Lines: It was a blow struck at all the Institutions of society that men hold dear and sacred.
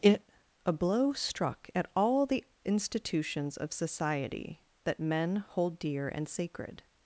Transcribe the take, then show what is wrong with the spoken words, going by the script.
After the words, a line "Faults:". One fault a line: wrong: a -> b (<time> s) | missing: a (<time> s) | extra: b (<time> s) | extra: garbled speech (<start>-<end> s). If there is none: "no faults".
It a blow struck at all the Institutions of society that men hold dear and sacred.
Faults:
missing: was (0.3 s)